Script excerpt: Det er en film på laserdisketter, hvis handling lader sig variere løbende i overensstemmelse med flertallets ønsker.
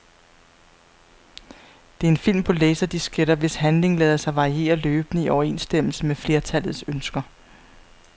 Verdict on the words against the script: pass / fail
pass